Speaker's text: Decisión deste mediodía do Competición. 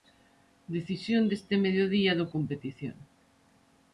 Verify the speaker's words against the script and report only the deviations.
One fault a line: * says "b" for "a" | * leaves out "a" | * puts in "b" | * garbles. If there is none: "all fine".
all fine